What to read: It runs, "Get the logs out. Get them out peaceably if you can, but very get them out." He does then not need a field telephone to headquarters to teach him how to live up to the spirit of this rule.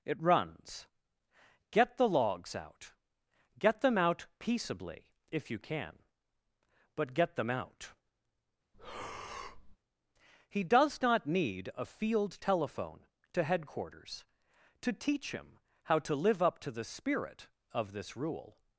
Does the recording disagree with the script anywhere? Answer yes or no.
yes